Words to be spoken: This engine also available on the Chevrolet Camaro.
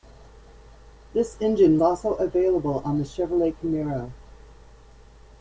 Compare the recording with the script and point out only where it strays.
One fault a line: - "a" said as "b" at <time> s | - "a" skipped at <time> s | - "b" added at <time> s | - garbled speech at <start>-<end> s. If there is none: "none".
none